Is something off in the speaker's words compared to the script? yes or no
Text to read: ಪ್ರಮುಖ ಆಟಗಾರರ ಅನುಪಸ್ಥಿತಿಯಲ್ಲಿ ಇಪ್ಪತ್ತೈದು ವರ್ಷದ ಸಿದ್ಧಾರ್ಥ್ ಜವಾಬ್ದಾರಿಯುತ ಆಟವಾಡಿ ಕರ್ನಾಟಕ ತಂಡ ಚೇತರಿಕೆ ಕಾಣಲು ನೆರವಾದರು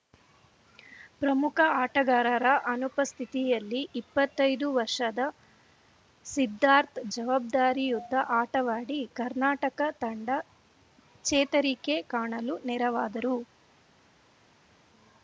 no